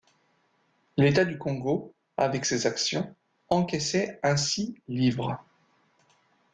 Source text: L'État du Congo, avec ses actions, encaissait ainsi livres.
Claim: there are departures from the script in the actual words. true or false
false